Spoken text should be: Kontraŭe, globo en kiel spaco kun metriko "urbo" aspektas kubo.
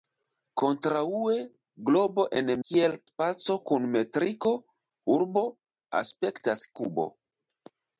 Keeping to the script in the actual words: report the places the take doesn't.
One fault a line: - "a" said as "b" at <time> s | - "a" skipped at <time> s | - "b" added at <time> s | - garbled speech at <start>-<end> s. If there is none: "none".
none